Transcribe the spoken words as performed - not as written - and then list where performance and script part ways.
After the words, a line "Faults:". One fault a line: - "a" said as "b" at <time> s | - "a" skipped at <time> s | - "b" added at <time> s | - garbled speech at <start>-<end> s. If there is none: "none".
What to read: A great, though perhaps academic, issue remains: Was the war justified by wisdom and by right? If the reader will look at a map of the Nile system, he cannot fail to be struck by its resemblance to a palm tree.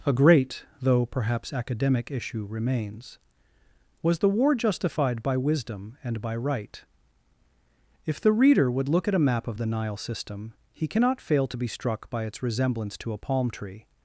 A great, though perhaps academic, issue remains: Was the war justified by wisdom and by right? If the reader would look at a map of the Nile system, he cannot fail to be struck by its resemblance to a palm tree.
Faults:
- "will" said as "would" at 8.7 s